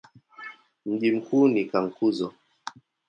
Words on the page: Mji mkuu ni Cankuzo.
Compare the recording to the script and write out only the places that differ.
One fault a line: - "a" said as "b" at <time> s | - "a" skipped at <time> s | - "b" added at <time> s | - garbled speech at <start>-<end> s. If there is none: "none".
none